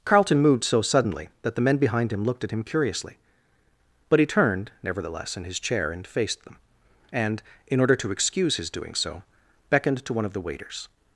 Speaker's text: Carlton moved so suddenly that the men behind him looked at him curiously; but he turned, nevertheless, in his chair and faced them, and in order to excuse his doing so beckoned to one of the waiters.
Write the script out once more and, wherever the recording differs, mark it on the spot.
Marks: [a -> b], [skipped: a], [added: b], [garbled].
Carlton moved so suddenly that the men behind him looked at him curiously; but he turned, nevertheless, in his chair and faced them, and in order to excuse his doing so beckoned to one of the waiters.